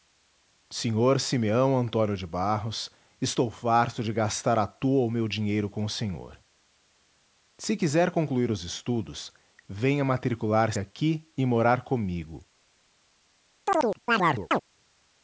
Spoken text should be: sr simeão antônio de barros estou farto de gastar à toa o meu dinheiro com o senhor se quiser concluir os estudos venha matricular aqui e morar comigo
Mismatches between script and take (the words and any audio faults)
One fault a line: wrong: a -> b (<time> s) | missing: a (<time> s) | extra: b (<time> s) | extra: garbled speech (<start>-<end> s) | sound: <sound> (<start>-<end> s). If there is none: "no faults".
sound: chirp (13.7-14.6 s)